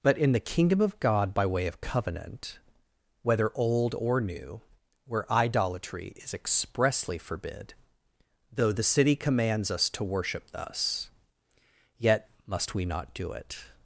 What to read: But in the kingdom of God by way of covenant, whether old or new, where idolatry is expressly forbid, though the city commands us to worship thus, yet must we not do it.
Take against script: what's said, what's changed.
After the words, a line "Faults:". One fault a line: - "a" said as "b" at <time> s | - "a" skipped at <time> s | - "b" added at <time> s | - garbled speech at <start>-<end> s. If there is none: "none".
But in the kingdom of God by way of covenant, whether old or new, where idolatry is expressly forbid, though the city commands us to worship thus, yet must we not do it.
Faults:
none